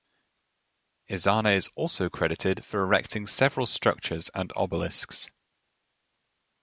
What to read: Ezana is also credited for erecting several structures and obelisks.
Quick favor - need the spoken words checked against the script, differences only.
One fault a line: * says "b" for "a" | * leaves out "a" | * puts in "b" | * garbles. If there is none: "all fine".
all fine